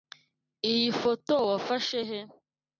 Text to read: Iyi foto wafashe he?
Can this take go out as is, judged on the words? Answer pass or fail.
pass